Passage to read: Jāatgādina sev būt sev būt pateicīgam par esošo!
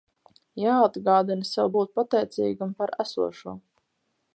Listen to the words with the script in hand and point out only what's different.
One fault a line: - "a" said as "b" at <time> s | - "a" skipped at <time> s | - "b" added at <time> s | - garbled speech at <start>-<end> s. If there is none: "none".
- "sev būt" skipped at 1.9 s